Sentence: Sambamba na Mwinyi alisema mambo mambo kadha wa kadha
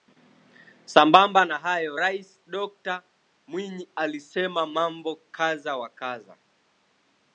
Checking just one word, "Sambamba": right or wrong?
right